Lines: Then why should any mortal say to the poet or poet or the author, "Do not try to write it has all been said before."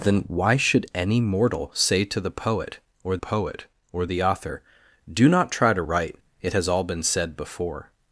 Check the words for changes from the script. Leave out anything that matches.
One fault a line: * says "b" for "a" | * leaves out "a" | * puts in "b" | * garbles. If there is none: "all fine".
all fine